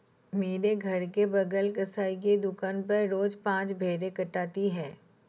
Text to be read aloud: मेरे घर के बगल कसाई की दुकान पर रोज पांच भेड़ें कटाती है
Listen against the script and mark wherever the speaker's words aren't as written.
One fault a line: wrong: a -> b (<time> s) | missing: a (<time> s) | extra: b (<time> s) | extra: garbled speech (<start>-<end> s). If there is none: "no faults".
no faults